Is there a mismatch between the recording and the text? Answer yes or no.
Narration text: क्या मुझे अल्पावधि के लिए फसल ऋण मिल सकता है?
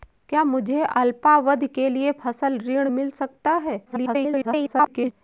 yes